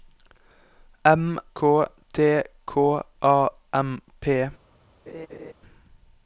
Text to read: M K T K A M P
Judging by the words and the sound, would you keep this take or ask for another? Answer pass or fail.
fail